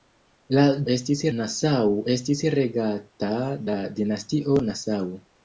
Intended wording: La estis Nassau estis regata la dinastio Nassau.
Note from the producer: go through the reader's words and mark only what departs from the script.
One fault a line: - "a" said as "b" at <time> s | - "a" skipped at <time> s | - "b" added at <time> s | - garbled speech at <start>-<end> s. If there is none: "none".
none